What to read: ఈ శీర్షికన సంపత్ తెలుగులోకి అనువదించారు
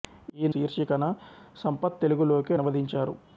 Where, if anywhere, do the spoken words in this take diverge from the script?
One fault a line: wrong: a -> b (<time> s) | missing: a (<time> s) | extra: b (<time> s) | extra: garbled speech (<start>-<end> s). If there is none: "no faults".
no faults